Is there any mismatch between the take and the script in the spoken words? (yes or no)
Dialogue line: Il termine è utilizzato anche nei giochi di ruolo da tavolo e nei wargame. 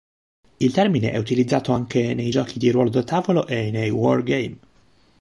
no